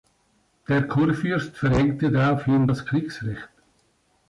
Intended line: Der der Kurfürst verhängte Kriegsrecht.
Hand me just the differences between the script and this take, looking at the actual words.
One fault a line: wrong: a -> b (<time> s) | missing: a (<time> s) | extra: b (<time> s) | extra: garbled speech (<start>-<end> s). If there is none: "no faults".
missing: der (0.9 s)
extra: daraufhin das (2.1 s)